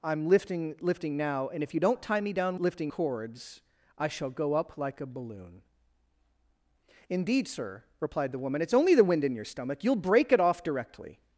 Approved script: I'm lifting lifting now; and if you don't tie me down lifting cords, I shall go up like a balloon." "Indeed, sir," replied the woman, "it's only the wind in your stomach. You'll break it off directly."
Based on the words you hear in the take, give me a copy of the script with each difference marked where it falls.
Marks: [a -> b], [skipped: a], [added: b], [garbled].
I'm lifting lifting now; and if you don't tie me down lifting cords, I shall go up like a balloon." "Indeed, sir," replied the woman, "it's only the wind in your stomach. You'll break it off directly."